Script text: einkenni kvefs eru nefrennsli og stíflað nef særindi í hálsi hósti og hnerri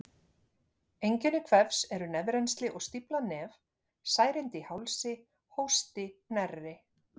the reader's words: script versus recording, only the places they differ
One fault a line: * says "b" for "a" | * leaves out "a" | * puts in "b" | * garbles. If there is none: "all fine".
* leaves out "og"